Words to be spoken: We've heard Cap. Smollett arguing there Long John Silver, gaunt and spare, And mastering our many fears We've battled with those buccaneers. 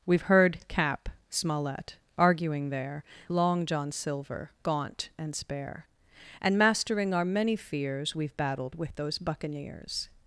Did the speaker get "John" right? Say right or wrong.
right